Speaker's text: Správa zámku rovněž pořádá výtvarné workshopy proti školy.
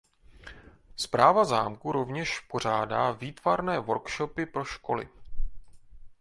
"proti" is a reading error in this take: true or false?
true